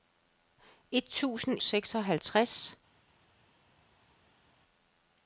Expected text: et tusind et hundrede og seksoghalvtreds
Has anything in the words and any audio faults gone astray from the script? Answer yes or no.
yes